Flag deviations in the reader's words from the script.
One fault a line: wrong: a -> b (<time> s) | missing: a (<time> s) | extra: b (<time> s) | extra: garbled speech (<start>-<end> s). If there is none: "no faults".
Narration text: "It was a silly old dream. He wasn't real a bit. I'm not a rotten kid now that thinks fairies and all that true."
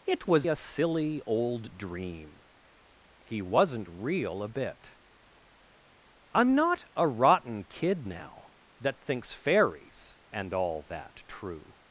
no faults